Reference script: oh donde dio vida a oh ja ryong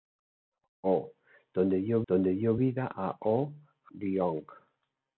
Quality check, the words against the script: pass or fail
fail